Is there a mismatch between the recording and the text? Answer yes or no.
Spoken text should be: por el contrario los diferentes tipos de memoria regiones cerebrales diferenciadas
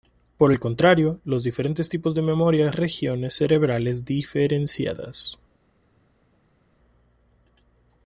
no